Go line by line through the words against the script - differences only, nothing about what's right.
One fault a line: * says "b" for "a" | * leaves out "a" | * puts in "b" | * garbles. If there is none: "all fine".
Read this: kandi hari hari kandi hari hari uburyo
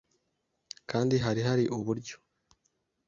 * leaves out "kandi hari hari"